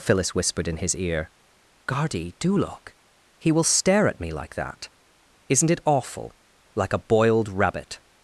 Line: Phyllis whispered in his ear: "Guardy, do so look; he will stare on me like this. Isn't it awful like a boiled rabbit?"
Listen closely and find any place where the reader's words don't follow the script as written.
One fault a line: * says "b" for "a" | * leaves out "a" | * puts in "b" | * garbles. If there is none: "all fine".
* leaves out "so"
* says "at" for "on"
* says "that" for "this"